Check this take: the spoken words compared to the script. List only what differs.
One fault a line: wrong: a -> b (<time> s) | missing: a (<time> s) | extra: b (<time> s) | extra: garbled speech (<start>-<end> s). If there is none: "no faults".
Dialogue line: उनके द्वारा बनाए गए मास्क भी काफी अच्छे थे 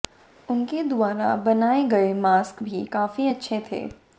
no faults